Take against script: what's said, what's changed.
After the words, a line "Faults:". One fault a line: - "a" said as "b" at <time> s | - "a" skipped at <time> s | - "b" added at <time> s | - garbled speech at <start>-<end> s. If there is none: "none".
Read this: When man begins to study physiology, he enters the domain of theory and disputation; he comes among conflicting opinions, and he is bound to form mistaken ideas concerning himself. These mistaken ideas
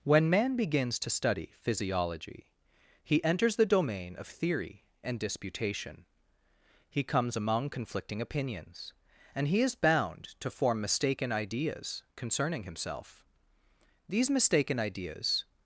When man begins to study physiology, he enters the domain of theory and disputation; he comes among conflicting opinions, and he is bound to form mistaken ideas concerning himself. These mistaken ideas
Faults:
none